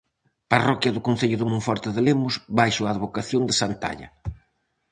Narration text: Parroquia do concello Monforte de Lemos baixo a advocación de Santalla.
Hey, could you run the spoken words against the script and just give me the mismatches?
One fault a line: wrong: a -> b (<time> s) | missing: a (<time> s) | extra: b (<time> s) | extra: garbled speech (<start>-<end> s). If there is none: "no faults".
extra: de (1.4 s)